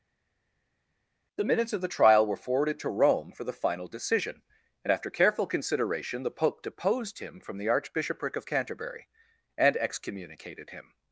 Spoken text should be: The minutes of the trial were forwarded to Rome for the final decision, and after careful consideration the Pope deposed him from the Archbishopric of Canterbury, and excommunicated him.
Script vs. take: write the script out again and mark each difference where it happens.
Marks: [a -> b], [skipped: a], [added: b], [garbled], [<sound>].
The minutes of the trial were forwarded to Rome for the final decision, and after careful consideration the Pope deposed him from the Archbishopric of Canterbury, and excommunicated him.